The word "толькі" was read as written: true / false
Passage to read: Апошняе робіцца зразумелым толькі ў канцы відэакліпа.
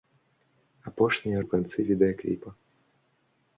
false